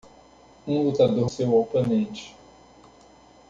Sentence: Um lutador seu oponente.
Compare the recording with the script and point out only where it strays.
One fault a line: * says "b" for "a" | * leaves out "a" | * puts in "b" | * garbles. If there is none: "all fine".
all fine